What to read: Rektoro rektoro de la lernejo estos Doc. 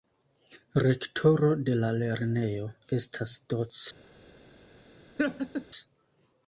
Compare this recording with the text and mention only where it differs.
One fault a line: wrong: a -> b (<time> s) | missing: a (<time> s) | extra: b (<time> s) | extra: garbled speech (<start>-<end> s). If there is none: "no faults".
missing: rektoro (1.5 s)
wrong: estos -> estas (3.0 s)